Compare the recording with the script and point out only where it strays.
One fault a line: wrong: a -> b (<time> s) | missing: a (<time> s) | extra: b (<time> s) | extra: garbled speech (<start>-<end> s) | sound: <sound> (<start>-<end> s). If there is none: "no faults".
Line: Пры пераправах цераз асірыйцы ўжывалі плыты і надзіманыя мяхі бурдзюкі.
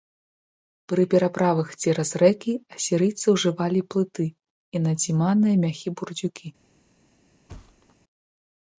extra: рэкі (2.2 s)
sound: thud (7.5-8.0 s)